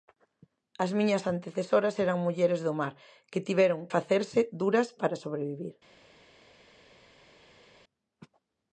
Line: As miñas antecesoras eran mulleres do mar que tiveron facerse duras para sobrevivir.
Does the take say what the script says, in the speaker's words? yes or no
yes